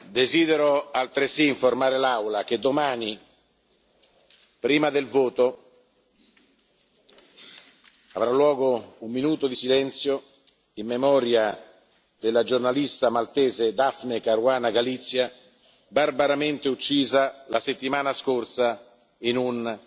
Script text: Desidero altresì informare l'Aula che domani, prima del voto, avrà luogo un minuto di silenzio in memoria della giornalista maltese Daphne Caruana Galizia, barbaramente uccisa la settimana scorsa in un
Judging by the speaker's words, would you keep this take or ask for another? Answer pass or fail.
pass